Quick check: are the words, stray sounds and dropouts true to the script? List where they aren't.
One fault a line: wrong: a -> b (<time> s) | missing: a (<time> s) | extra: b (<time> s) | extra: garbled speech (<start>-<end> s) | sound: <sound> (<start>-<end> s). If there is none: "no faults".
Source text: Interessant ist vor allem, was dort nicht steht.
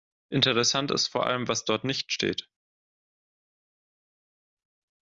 no faults